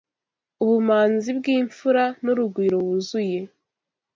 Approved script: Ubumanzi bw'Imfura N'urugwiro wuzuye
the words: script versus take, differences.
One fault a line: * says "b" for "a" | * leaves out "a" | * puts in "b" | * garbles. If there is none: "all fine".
all fine